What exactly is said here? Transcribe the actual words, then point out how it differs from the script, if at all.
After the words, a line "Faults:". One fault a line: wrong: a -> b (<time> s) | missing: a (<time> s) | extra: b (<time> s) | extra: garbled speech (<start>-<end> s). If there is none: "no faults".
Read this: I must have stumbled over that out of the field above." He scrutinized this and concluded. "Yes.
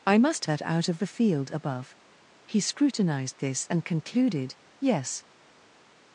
I must that out of the field above." He scrutinized this and concluded. "Yes.
Faults:
missing: have stumbled over (0.5 s)